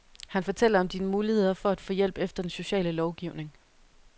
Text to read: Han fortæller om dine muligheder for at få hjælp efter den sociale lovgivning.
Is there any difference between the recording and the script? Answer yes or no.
no